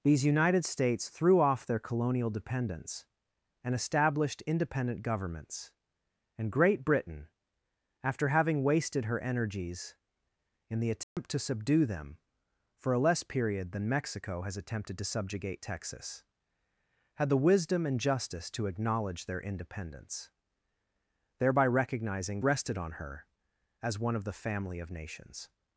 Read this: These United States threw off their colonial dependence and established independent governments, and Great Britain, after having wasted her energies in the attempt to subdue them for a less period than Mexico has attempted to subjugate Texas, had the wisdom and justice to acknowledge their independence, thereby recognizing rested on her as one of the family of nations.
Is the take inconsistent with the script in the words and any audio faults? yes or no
yes